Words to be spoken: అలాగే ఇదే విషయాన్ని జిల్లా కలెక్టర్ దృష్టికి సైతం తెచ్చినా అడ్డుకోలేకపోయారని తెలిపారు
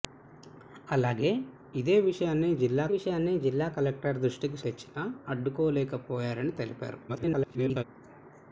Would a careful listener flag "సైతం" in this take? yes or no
yes